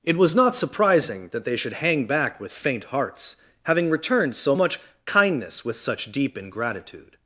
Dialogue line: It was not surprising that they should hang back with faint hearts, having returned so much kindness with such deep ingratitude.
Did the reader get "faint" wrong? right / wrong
right